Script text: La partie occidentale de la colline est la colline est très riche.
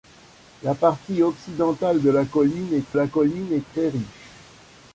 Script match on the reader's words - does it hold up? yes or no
yes